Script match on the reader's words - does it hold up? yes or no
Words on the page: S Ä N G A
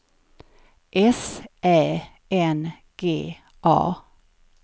yes